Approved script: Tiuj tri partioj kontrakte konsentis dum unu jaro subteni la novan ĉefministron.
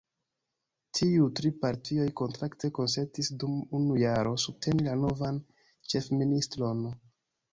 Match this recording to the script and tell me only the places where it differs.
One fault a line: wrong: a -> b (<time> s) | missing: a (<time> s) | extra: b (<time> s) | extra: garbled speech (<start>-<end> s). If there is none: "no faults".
no faults